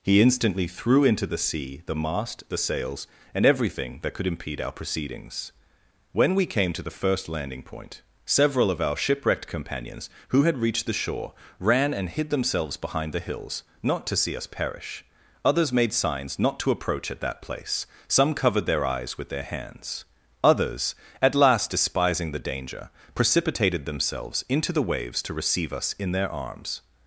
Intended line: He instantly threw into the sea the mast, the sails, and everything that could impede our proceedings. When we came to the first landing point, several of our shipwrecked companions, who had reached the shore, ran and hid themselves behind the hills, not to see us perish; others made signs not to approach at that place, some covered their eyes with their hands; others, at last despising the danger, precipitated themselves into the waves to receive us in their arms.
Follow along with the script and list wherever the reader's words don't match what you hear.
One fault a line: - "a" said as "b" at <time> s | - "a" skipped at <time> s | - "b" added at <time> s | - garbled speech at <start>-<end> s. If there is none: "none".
none